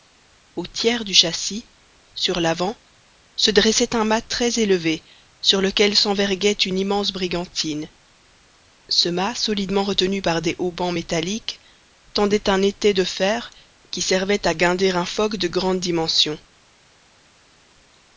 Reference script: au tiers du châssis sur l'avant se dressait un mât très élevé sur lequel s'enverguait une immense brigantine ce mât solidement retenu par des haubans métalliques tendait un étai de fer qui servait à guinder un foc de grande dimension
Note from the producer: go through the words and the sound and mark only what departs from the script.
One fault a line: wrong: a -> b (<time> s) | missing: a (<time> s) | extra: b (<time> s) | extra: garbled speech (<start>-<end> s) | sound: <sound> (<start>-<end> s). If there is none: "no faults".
no faults